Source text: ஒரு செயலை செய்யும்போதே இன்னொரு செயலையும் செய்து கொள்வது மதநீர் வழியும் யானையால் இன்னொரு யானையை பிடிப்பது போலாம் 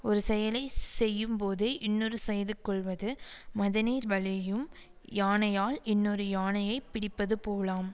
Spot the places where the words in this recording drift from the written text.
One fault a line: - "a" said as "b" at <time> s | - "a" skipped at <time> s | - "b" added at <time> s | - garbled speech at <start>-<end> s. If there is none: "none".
- "செயலையும்" skipped at 2.2 s